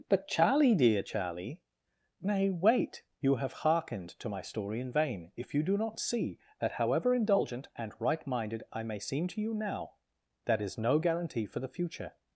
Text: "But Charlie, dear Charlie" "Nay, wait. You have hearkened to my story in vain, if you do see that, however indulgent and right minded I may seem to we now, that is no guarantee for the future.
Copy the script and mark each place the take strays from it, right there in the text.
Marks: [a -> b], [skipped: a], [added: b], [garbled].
"But Charlie, dear Charlie" "Nay, wait. You have hearkened to my story in vain, if you do [added: not] see that, however indulgent and right minded I may seem to [we -> you] now, that is no guarantee for the future.